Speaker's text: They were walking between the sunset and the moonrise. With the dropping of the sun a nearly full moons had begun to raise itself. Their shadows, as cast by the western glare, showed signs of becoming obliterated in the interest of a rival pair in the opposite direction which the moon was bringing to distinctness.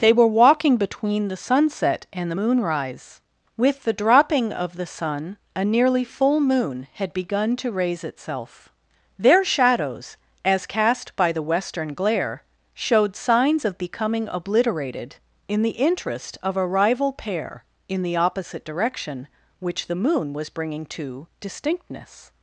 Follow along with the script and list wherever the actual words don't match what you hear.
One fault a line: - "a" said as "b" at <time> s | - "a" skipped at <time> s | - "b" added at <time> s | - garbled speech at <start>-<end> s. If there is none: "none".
- "moons" said as "moon" at 6.4 s